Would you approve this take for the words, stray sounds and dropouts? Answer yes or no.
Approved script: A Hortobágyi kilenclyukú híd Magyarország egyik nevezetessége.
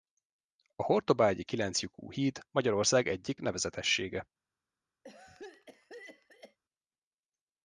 no